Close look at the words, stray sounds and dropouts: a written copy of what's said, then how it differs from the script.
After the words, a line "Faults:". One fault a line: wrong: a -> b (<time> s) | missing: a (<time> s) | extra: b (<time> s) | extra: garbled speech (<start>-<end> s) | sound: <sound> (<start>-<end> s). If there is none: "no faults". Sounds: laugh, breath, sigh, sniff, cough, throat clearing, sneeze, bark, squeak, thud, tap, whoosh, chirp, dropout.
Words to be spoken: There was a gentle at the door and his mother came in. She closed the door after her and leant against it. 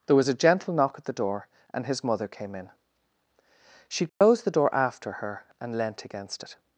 There was a gentle knock at the door and his mother came in. She closed the door after her and leant against it.
Faults:
extra: knock (0.7 s)
sound: dropout (4.1-4.2 s)